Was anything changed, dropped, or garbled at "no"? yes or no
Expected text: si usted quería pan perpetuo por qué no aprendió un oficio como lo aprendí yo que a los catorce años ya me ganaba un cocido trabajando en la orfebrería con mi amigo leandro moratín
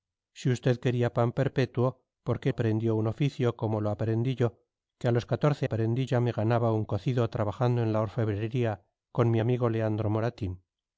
yes